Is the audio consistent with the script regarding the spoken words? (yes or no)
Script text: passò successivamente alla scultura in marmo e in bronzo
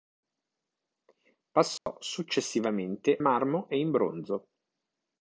no